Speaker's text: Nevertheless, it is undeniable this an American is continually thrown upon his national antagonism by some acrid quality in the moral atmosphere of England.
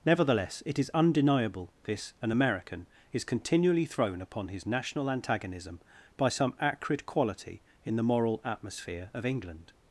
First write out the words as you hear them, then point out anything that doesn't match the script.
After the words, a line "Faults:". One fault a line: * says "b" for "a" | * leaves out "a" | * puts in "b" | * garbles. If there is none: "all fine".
Nevertheless, it is undeniable this an American is continually thrown upon his national antagonism by some acrid quality in the moral atmosphere of England.
Faults:
all fine